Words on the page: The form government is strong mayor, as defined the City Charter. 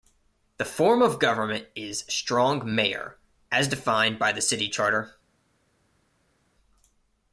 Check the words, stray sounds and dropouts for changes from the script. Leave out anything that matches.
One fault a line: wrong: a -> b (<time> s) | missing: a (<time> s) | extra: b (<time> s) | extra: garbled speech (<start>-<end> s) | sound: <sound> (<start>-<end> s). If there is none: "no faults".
extra: of (1.0 s)
extra: by (4.2 s)